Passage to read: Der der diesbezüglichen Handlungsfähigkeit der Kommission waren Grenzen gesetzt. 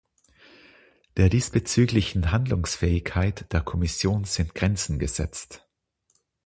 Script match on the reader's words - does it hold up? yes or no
no